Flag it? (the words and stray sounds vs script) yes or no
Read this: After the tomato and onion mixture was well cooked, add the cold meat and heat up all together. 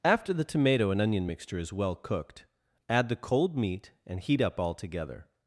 yes